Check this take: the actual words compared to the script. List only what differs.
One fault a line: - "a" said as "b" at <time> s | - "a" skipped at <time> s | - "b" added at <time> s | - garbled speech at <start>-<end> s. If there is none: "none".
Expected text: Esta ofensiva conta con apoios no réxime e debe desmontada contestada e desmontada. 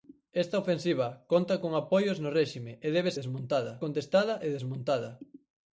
none